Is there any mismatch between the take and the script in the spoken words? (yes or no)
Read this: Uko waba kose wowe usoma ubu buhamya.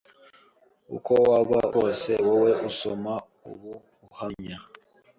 no